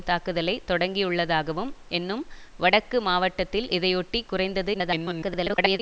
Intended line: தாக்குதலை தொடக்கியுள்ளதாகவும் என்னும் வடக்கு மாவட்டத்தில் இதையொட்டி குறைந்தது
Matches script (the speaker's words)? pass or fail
fail